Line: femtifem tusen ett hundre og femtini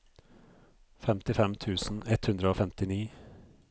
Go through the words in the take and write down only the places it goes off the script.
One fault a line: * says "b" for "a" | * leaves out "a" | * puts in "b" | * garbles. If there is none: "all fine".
all fine